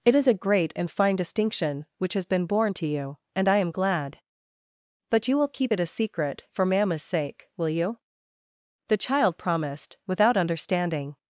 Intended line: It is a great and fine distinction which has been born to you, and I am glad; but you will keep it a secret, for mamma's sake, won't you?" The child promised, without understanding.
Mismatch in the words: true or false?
true